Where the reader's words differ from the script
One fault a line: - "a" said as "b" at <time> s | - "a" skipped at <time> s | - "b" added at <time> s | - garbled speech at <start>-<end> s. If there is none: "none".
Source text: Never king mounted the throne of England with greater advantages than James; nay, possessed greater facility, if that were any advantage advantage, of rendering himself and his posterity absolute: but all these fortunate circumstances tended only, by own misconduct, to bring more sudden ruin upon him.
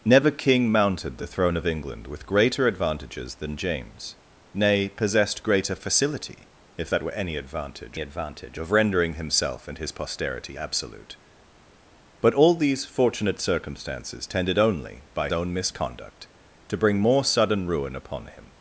none